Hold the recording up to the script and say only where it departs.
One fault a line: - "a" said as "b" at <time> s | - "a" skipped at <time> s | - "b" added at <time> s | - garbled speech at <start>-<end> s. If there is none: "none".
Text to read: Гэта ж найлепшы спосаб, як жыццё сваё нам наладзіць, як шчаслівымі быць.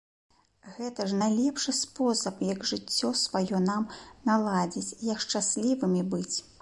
none